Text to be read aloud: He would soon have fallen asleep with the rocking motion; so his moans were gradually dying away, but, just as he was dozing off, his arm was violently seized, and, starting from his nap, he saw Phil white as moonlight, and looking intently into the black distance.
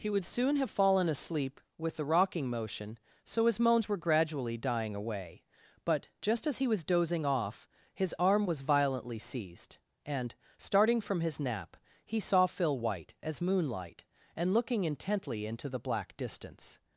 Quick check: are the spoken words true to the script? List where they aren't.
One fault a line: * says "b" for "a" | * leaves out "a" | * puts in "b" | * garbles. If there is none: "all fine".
all fine